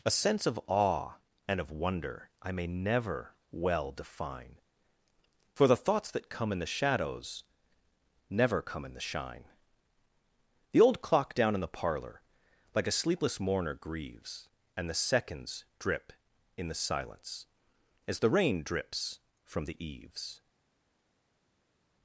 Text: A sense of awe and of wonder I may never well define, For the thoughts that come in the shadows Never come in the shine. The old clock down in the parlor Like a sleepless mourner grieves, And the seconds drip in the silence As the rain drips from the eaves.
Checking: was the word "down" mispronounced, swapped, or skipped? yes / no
no